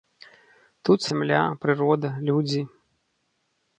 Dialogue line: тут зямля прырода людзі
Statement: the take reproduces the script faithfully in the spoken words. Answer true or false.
true